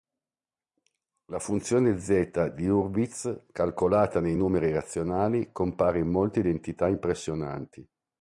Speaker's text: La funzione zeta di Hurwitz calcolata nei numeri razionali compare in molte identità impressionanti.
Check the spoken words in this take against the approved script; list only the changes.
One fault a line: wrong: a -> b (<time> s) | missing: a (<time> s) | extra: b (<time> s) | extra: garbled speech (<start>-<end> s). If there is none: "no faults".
no faults